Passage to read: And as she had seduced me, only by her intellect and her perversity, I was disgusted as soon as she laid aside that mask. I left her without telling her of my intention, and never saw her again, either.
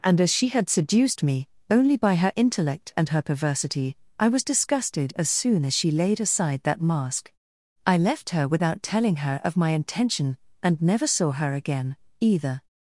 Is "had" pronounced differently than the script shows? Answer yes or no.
no